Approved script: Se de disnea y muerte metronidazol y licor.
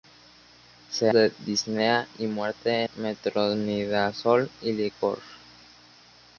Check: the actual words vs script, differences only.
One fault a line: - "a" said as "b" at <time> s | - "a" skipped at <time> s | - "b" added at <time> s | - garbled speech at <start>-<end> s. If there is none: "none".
none